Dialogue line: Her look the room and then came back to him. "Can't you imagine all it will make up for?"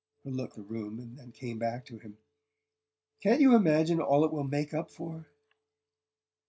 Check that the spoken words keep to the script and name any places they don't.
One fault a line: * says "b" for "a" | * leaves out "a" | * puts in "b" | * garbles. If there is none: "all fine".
all fine